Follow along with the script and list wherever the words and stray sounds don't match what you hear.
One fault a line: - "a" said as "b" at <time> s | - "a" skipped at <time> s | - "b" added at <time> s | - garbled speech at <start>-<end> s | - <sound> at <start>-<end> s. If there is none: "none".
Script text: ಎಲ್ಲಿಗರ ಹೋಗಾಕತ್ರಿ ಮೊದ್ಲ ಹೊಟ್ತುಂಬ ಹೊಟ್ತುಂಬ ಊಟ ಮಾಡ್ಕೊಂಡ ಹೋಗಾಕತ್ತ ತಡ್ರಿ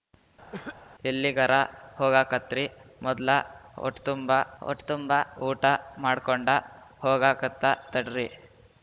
- cough at 0.5-0.8 s